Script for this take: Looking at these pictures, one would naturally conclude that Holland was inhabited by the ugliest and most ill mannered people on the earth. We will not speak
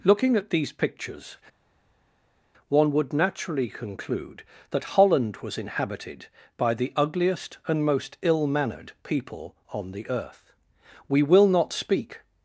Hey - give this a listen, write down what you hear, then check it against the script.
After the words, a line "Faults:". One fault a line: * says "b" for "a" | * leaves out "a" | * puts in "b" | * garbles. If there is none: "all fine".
Looking at these pictures, one would naturally conclude that Holland was inhabited by the ugliest and most ill mannered people on the earth. We will not speak
Faults:
all fine